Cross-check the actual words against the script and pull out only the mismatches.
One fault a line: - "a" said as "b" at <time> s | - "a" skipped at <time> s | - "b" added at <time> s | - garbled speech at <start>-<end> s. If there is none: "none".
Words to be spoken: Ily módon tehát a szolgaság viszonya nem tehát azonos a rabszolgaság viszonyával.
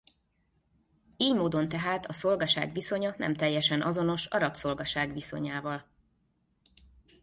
- "tehát" said as "teljesen" at 3.4 s